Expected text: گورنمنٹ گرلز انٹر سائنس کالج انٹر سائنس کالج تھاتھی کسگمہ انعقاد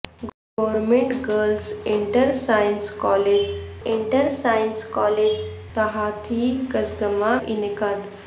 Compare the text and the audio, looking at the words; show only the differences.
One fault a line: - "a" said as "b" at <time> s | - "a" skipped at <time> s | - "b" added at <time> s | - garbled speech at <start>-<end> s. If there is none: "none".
none